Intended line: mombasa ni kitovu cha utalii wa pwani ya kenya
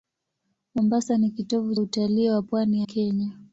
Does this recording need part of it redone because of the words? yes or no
yes